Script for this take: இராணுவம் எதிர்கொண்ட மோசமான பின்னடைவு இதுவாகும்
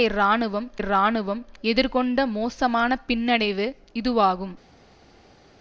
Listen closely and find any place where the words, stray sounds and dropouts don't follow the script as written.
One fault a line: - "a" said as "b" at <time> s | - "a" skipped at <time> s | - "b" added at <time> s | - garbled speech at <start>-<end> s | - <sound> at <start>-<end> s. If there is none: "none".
- "இராணுவம்" added at 0.8 s